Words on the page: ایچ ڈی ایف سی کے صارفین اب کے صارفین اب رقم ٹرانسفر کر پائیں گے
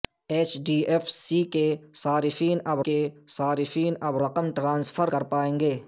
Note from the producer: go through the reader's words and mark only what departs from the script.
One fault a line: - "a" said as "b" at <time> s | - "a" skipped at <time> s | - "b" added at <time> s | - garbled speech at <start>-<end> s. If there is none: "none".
none